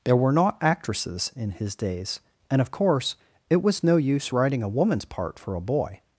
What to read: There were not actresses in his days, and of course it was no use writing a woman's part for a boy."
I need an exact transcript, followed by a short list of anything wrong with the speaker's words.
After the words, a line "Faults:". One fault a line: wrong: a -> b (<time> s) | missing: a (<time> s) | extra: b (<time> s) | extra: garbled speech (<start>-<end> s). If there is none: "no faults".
There were not actresses in his days, and of course it was no use writing a woman's part for a boy."
Faults:
no faults